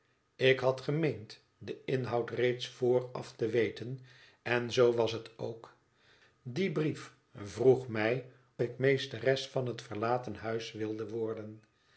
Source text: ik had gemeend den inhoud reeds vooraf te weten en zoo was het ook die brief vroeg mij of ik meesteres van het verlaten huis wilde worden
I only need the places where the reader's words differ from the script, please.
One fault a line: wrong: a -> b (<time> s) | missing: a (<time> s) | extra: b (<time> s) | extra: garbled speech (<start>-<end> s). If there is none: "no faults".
missing: of (8.3 s)